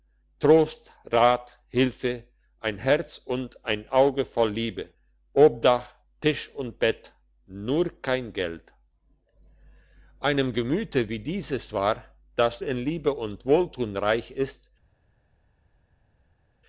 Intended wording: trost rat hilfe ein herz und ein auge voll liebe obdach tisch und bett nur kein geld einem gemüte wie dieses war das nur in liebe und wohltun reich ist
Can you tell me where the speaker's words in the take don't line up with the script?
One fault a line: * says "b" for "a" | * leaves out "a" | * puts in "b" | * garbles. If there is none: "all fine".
* leaves out "nur"